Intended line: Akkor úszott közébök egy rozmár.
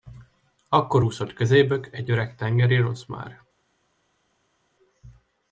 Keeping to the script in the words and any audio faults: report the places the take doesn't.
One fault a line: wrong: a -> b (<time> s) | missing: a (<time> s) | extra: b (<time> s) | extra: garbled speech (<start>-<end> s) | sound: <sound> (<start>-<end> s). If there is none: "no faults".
extra: öreg tengeri (2.1 s)